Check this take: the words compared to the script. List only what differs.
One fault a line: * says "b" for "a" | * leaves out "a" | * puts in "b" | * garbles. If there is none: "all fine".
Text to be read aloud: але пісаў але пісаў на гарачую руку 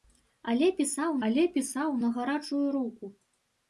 all fine